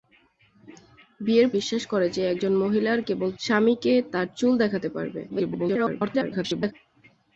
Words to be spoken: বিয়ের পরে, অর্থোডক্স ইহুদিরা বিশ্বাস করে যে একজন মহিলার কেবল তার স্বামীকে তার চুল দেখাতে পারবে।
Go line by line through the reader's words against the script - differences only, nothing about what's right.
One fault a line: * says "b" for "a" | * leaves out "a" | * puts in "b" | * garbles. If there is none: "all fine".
* leaves out "পরে অর্থোডক্স ইহুদিরা"
* leaves out "তার"
* garbles